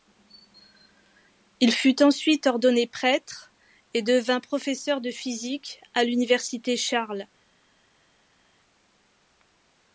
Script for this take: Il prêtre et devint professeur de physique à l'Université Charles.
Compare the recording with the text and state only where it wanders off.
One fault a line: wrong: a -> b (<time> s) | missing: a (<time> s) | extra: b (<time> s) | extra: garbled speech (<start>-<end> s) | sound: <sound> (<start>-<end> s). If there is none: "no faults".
extra: fut ensuite ordonné (1.7 s)